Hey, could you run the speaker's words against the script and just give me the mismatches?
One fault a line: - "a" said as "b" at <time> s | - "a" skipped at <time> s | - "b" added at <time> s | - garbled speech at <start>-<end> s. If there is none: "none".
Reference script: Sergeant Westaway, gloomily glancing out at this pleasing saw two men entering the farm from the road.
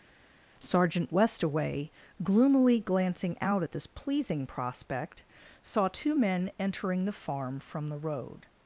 - "prospect" added at 4.5 s